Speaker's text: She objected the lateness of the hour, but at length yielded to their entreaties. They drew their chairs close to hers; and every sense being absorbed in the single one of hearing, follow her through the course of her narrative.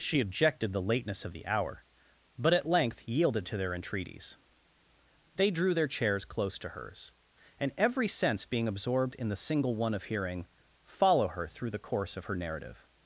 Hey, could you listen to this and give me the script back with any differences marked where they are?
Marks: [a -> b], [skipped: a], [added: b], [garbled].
She objected the lateness of the hour, but at length yielded to their entreaties. They drew their chairs close to hers; and every sense being absorbed in the single one of hearing, follow her through the course of her narrative.